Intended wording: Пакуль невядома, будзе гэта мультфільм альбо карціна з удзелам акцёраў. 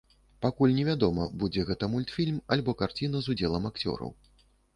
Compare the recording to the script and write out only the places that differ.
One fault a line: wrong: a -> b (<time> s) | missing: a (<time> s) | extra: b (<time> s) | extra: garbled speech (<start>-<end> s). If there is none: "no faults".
no faults